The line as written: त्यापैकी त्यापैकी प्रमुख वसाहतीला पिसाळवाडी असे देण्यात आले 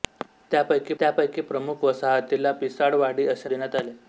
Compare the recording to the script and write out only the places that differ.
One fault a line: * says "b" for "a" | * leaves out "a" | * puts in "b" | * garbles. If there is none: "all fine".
all fine